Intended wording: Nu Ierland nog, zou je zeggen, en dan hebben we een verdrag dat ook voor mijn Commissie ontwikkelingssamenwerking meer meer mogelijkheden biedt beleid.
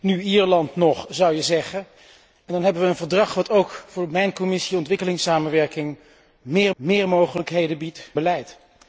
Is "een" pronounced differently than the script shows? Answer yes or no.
no